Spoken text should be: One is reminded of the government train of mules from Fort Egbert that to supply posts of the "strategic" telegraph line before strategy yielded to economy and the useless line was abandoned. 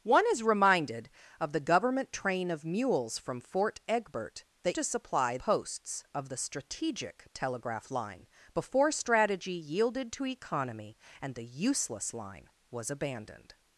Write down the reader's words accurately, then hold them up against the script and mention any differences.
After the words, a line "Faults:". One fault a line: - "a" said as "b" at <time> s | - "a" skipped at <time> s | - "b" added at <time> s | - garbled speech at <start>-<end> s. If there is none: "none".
One is reminded of the government train of mules from Fort Egbert that to supply posts of the "strategic" telegraph line before strategy yielded to economy and the useless line was abandoned.
Faults:
none